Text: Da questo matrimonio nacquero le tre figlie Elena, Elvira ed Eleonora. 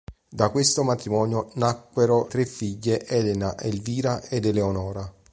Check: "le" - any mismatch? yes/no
yes